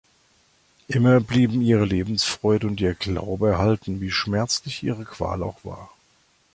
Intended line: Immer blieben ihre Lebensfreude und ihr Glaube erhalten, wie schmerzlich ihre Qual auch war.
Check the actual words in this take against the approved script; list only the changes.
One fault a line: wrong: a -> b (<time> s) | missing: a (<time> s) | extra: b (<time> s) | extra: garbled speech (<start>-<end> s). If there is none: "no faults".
no faults